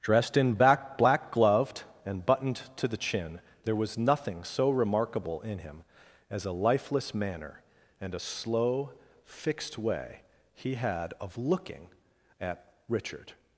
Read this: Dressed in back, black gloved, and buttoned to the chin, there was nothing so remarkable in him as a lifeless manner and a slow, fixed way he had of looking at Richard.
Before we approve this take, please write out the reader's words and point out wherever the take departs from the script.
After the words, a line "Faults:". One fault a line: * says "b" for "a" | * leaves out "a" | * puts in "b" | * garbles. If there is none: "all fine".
Dressed in back, black gloved, and buttoned to the chin, there was nothing so remarkable in him as a lifeless manner and a slow, fixed way he had of looking at Richard.
Faults:
all fine